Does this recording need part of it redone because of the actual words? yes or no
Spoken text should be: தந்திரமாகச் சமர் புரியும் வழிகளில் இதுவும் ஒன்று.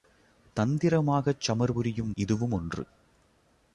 yes